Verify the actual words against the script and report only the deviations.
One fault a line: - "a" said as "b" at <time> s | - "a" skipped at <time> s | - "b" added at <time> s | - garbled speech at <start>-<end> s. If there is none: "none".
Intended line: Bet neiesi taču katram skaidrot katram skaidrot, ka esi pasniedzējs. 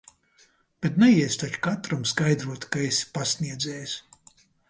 - "katram skaidrot" skipped at 2.7 s